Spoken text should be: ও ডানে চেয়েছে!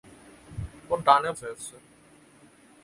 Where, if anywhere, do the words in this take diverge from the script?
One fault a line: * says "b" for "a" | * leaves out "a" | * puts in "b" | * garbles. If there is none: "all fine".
all fine